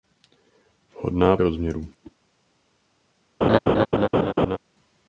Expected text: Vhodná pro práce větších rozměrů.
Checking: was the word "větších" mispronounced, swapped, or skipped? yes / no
yes